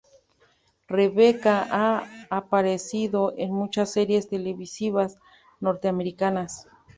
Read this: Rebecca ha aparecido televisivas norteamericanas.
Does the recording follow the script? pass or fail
fail